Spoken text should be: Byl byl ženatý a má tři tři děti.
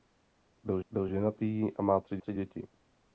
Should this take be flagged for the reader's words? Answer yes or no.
no